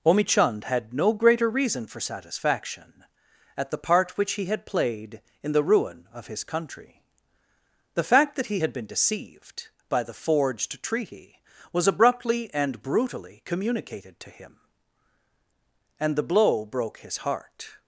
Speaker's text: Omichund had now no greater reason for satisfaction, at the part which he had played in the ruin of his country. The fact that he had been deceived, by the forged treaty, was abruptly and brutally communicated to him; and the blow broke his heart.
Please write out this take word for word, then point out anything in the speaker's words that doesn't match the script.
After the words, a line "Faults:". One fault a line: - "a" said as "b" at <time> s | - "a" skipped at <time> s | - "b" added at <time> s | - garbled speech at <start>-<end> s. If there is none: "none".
Omichund had no greater reason for satisfaction, at the part which he had played in the ruin of his country. The fact that he had been deceived, by the forged treaty, was abruptly and brutally communicated to him; and the blow broke his heart.
Faults:
- "now" skipped at 0.9 s